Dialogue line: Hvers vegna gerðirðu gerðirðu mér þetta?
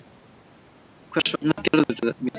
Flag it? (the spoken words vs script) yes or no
yes